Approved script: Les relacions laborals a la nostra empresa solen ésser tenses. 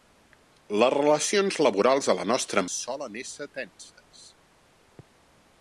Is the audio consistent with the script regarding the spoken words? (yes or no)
no